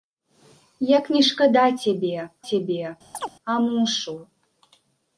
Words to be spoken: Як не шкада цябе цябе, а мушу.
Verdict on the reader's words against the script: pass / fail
pass